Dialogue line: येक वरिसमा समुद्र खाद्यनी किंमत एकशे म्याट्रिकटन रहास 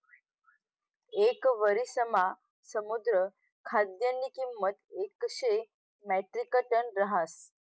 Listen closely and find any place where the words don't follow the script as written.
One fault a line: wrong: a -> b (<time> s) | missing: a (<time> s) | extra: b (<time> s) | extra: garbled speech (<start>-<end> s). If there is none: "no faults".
no faults